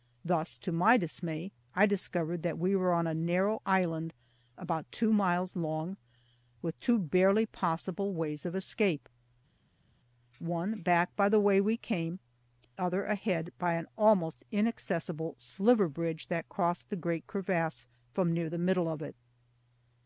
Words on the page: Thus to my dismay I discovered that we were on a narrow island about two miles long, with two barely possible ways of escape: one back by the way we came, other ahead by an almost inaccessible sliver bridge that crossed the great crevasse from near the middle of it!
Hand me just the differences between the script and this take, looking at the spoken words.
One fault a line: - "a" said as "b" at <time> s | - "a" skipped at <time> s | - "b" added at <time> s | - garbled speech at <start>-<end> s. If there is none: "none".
none